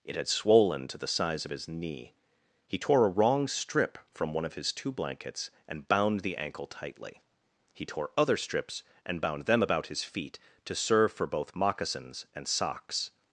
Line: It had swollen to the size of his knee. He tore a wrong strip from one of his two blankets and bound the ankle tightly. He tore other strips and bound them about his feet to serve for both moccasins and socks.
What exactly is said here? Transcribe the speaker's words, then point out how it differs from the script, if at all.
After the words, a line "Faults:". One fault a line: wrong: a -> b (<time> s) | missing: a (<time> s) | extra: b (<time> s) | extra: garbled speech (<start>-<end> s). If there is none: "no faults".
It had swollen to the size of his knee. He tore a wrong strip from one of his two blankets and bound the ankle tightly. He tore other strips and bound them about his feet to serve for both moccasins and socks.
Faults:
no faults